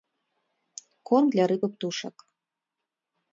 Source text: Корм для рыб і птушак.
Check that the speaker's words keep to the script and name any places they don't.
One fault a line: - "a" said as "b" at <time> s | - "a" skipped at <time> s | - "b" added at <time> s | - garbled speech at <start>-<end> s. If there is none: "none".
none